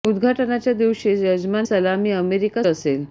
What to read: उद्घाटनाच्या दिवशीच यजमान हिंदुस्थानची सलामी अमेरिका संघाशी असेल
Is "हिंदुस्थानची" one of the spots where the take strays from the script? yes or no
yes